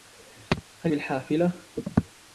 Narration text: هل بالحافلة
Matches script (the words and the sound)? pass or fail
pass